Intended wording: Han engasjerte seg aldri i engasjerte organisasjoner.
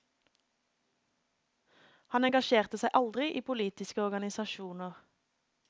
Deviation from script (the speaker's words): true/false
true